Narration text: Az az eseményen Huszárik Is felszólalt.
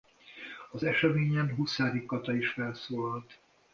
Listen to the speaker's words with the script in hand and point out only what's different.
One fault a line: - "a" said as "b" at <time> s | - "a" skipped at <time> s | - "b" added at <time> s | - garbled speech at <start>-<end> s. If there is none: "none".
- "az" skipped at 0.8 s
- "Kata" added at 2.0 s